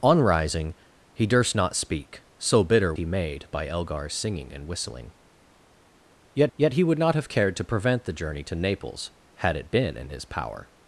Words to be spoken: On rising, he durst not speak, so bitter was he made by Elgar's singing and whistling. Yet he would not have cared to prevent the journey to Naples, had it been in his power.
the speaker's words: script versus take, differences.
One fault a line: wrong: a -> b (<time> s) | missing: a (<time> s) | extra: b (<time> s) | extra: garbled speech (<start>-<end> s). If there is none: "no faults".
missing: was (2.9 s)
extra: yet (6.6 s)